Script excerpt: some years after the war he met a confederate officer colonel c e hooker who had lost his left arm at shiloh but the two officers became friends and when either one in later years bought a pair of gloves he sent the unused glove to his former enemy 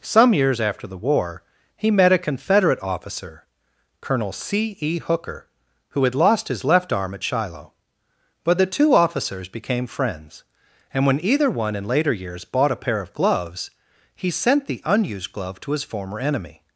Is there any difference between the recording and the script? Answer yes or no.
no